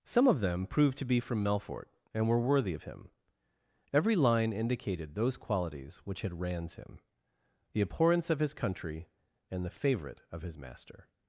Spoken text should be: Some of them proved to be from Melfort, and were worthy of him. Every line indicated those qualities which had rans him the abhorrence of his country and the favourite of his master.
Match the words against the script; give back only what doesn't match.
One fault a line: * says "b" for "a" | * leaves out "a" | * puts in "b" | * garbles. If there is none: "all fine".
all fine